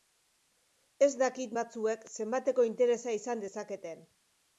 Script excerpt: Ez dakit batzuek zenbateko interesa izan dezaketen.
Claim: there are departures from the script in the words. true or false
false